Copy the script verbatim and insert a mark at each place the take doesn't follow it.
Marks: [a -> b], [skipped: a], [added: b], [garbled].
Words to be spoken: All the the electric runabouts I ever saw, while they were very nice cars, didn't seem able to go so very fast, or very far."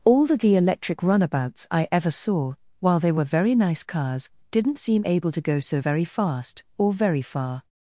All the the electric runabouts I ever saw, while they were very nice cars, didn't seem able to go so very fast, or very far."